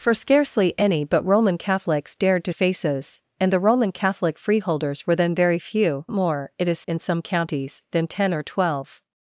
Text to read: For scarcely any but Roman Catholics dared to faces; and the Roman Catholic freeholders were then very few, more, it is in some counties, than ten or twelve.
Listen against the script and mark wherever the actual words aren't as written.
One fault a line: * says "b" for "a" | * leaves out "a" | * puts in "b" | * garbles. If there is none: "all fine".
all fine